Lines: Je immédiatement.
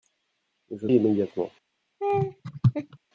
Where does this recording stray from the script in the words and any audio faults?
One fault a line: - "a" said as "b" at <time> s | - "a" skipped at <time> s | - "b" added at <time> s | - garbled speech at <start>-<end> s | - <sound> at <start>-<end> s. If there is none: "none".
- laugh at 2.0-3.0 s